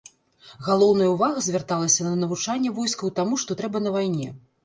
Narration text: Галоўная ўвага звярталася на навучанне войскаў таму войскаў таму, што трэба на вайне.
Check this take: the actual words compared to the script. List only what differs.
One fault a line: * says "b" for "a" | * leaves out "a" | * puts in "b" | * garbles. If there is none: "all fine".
* leaves out "войскаў таму"